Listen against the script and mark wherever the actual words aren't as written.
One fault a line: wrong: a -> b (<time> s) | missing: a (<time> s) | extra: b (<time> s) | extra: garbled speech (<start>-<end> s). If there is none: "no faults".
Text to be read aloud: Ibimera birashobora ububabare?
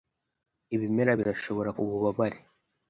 no faults